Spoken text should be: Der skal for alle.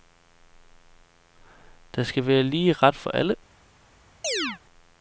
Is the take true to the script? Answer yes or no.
no